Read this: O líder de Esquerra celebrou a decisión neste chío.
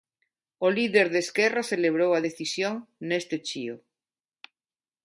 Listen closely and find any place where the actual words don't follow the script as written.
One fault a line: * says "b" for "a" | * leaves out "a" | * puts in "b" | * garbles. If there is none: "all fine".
all fine